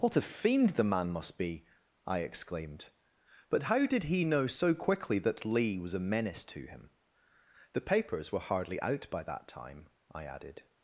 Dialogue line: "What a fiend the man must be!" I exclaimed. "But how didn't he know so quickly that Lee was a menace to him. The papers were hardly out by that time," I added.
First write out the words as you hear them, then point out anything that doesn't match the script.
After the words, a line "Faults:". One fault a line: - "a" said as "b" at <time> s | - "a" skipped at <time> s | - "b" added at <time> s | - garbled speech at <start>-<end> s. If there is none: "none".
"What a fiend the man must be!" I exclaimed. "But how did he know so quickly that Lee was a menace to him. The papers were hardly out by that time," I added.
Faults:
- "didn't" said as "did" at 3.9 s